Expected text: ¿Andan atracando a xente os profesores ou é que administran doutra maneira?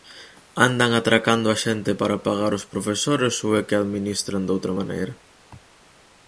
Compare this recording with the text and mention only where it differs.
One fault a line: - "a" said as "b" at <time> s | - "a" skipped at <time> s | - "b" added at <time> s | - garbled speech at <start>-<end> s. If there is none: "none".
- "para pagar" added at 2.0 s